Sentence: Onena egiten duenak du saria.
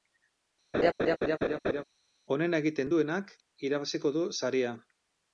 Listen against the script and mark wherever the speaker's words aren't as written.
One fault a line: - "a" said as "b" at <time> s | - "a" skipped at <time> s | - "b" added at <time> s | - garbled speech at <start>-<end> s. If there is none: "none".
- "irabaziko" added at 3.7 s